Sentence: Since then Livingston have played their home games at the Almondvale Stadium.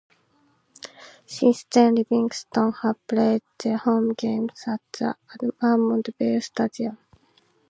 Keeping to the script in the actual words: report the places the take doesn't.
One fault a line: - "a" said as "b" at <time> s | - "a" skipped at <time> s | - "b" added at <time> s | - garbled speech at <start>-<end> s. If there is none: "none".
none